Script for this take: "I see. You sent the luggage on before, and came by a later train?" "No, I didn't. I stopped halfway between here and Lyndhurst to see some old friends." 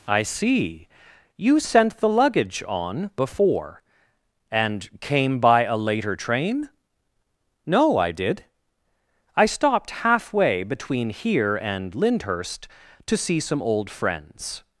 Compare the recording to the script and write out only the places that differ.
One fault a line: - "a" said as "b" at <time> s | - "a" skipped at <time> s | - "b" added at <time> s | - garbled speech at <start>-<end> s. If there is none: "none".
- "didn't" said as "did" at 8.1 s